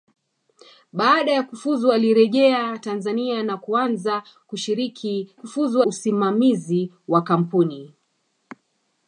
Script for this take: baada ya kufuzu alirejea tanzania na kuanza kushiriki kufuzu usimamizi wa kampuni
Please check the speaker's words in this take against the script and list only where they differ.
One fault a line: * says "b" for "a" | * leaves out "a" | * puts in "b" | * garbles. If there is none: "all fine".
all fine